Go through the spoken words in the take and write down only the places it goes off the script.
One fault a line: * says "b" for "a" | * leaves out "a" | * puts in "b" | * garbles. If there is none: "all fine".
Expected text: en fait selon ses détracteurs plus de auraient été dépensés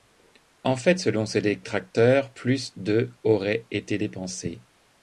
all fine